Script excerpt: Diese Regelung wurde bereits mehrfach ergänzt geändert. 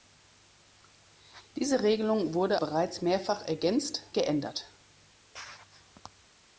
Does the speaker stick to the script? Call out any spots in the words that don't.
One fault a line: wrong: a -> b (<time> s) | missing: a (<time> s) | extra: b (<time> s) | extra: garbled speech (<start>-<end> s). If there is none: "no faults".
no faults